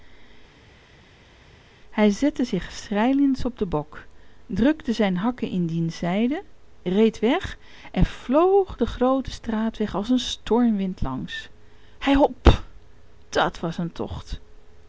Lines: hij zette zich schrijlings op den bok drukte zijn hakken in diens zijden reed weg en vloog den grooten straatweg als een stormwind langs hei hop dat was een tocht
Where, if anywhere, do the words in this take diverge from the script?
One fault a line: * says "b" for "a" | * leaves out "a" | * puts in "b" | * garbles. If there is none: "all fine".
all fine